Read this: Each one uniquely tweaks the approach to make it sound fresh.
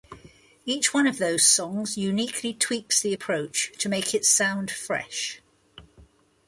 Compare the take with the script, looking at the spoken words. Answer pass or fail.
fail